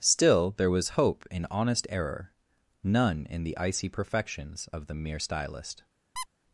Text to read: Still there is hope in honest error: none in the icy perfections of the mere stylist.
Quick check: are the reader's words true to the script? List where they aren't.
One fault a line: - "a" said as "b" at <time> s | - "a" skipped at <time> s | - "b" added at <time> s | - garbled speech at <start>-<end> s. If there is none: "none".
- "is" said as "was" at 0.7 s